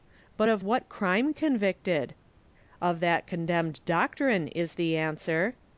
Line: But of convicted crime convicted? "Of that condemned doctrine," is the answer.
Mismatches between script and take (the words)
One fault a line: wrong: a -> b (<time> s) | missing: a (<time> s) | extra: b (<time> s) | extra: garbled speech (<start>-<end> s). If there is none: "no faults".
wrong: convicted -> what (0.6 s)